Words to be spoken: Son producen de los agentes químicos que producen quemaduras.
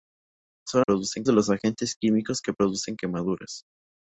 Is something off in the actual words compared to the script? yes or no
no